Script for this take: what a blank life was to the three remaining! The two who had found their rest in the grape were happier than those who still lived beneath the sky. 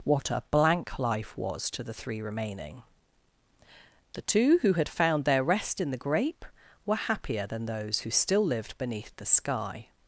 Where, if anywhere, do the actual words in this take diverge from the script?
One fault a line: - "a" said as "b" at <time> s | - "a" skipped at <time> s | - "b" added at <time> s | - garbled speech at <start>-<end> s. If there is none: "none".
none